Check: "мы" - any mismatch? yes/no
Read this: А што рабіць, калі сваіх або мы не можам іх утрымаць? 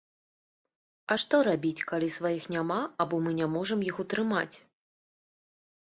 no